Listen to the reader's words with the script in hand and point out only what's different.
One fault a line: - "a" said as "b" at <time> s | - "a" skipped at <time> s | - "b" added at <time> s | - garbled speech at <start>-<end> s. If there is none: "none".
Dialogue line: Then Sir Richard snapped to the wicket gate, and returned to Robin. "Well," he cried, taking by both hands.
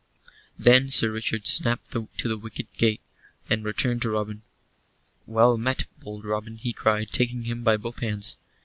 - "met bold Robin" added at 5.6 s
- "him" added at 7.4 s